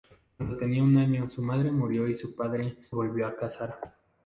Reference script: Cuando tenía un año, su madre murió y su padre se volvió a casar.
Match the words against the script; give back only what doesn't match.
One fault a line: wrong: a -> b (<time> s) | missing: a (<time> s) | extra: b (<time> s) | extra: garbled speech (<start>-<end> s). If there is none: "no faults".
missing: se (2.8 s)